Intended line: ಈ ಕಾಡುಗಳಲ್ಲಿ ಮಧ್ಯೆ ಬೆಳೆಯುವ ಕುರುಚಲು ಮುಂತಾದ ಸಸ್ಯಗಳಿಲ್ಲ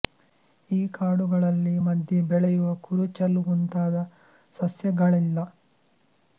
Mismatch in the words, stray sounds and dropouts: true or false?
false